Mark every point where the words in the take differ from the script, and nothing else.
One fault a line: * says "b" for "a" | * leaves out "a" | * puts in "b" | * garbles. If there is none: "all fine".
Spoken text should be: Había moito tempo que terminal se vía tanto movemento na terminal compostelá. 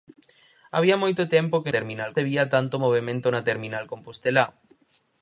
all fine